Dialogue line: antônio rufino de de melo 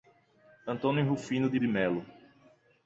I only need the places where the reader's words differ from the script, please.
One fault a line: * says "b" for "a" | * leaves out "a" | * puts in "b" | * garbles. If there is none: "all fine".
all fine